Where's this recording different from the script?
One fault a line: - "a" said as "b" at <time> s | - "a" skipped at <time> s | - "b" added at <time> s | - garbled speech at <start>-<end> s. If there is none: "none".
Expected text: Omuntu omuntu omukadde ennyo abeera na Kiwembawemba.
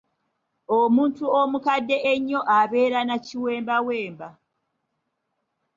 - "omuntu" skipped at 1.2 s